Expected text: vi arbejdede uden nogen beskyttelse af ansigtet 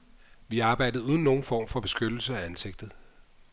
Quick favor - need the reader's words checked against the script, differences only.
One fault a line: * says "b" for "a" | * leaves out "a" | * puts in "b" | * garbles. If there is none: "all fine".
* puts in "form for"